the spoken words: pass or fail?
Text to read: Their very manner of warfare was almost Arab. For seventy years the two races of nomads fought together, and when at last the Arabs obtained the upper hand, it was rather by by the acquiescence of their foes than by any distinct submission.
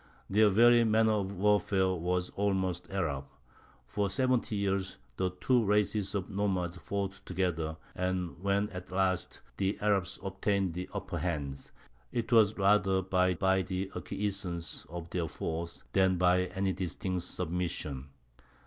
pass